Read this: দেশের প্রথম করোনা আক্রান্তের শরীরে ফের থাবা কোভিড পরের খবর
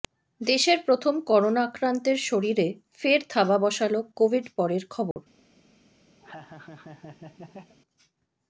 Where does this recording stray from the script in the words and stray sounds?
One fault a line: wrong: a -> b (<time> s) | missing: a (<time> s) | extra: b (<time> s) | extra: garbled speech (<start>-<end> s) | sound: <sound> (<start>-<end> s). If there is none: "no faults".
extra: বসাল (3.6 s)
sound: dropout (5.1-5.2 s)
sound: laugh (6.2-7.7 s)